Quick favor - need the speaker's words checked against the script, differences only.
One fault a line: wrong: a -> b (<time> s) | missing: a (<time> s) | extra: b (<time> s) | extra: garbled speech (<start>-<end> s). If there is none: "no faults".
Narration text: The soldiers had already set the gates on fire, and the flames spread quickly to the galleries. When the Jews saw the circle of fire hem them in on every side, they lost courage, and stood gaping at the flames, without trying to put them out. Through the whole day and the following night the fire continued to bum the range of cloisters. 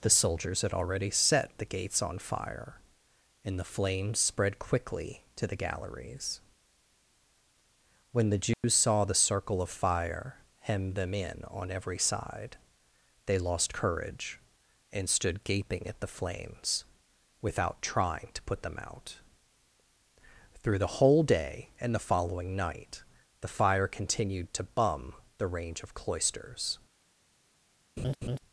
no faults